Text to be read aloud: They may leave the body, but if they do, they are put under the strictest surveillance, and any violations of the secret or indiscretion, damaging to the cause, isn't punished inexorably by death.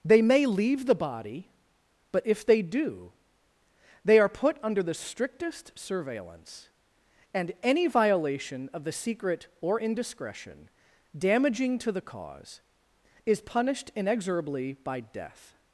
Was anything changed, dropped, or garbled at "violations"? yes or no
yes